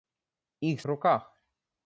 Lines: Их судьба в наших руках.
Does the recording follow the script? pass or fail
fail